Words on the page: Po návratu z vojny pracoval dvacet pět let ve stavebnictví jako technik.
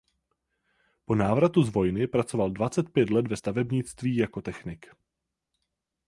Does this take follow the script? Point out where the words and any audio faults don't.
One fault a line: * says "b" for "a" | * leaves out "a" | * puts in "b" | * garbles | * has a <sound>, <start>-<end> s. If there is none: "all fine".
all fine